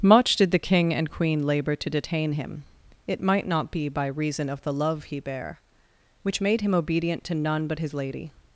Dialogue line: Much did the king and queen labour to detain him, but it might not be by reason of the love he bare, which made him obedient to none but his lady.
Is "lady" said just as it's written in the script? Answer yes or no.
yes